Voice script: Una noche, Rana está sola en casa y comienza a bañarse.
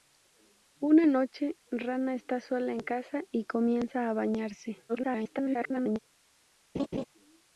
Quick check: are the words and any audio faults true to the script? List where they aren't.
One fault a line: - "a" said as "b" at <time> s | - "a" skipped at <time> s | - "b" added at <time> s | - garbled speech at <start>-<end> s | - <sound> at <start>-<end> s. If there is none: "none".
- garbled speech at 4.9-6.0 s
- laugh at 6.7-7.1 s